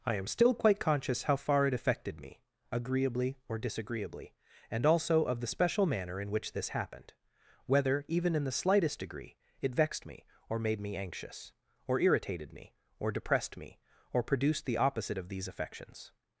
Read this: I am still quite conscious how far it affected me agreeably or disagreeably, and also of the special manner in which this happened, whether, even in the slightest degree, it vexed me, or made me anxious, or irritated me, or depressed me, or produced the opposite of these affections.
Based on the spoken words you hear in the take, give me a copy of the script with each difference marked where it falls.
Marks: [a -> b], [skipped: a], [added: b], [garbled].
I am still quite conscious how far it affected me agreeably or disagreeably, and also of the special manner in which this happened, whether, even in the slightest degree, it vexed me, or made me anxious, or irritated me, or depressed me, or produced the opposite of these affections.